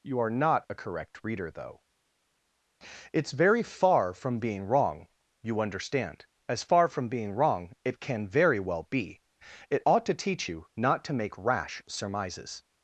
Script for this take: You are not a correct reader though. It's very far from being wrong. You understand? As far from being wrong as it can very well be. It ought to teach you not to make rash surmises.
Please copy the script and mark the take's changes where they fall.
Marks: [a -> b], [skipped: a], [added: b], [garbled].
You are not a correct reader though. It's very far from being wrong. You understand? As far from being wrong [skipped: as] it can very well be. It ought to teach you not to make rash surmises.